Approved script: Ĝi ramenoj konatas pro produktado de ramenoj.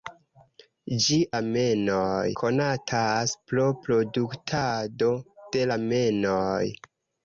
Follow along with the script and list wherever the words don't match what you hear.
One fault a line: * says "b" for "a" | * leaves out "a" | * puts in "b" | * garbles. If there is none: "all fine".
all fine